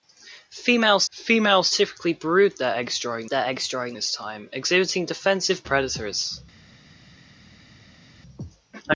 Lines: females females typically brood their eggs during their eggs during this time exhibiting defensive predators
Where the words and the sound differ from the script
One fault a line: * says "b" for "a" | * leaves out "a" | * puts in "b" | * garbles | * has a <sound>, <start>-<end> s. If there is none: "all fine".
all fine